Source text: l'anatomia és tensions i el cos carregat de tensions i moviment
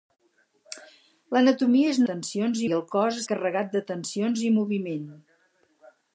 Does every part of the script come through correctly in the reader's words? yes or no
yes